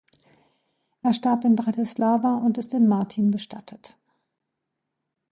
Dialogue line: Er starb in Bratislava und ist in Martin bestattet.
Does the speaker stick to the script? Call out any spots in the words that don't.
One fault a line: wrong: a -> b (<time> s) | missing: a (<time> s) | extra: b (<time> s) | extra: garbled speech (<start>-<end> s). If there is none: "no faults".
no faults